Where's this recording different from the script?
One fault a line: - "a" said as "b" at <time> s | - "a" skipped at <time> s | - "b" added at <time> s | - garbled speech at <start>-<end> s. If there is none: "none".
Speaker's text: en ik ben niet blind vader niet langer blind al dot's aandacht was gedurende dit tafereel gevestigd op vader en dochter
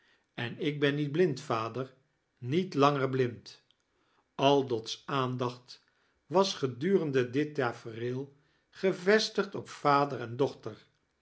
none